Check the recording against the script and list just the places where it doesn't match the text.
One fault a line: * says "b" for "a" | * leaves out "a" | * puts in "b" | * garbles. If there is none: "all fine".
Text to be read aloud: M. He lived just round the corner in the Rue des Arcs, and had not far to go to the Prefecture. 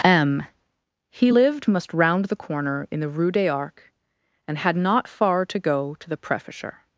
* says "must" for "just"